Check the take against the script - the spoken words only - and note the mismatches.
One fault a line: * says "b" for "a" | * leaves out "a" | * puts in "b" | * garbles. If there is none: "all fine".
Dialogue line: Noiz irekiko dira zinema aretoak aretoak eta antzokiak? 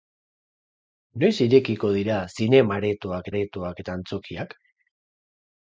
all fine